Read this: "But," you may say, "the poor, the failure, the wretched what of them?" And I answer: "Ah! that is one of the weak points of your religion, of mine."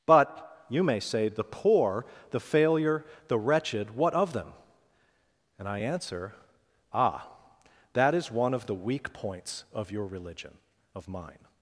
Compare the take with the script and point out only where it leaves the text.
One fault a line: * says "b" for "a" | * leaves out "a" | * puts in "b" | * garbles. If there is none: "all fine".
all fine